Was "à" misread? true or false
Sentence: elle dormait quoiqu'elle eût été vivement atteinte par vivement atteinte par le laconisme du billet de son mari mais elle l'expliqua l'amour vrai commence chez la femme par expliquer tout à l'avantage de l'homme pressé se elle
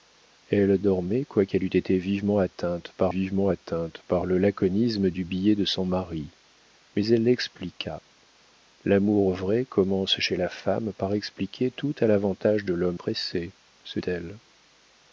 false